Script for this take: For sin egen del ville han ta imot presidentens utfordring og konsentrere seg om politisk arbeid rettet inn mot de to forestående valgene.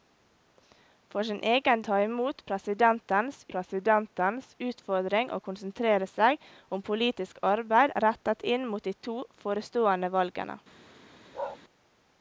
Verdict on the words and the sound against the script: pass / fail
fail